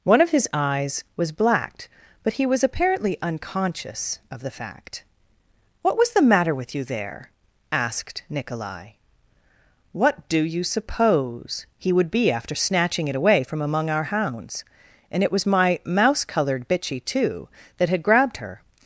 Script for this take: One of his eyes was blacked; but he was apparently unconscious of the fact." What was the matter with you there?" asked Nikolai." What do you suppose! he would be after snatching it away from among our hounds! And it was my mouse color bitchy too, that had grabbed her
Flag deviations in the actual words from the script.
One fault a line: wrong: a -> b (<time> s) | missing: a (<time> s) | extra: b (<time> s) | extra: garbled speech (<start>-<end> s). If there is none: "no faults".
wrong: color -> colored (16.2 s)